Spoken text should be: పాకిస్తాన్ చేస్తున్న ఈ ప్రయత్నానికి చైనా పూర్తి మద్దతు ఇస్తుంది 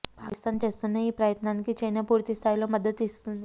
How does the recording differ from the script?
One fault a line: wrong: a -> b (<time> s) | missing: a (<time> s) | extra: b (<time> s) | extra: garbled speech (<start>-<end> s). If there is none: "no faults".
extra: స్థాయిలో (2.3 s)